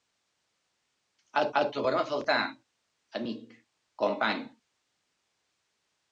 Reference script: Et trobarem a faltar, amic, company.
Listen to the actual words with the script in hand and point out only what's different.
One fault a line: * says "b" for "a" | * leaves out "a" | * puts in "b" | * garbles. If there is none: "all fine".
* puts in "et"